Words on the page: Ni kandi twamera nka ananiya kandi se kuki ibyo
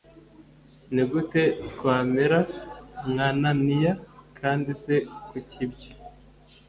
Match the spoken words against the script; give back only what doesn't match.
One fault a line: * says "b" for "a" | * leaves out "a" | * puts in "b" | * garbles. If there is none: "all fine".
* says "gute" for "kandi"